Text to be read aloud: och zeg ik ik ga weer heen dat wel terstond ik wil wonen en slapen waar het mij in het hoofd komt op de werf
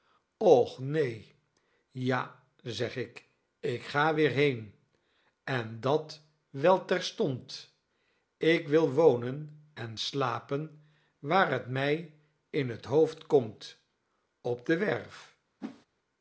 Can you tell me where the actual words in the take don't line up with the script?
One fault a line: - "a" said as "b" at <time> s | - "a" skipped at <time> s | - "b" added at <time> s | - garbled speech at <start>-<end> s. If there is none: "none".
- "neen ja" added at 0.8 s
- "en" added at 5.4 s